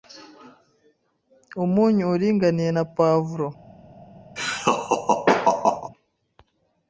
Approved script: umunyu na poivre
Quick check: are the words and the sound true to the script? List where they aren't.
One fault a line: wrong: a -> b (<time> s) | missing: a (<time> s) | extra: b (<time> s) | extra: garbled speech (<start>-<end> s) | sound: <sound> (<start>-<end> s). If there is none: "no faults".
extra: uringaniye (2.1 s)
sound: laugh (4.4-5.9 s)